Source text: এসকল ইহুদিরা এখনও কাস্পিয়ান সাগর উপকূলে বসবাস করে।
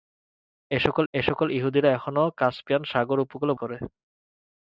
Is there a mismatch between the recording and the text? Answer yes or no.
yes